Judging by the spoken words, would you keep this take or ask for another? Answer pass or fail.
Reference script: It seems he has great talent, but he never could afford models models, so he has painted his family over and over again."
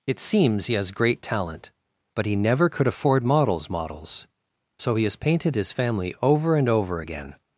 pass